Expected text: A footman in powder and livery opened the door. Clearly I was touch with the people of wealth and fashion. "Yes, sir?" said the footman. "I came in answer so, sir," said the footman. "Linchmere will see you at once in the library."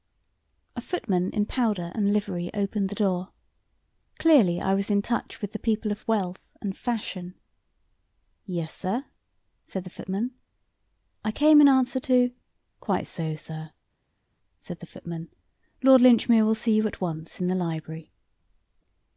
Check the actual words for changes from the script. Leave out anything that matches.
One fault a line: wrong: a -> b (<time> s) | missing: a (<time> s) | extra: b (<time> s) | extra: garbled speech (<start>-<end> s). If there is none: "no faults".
extra: in (4.9 s)
extra: to Quite (12.0 s)
extra: Lord (15.8 s)